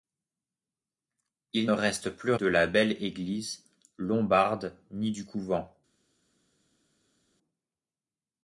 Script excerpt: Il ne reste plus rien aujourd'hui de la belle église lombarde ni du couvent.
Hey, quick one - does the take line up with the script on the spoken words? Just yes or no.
no